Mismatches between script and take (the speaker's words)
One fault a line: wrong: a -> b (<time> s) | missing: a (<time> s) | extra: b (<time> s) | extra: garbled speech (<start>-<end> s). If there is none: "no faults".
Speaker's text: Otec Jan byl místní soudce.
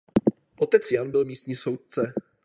no faults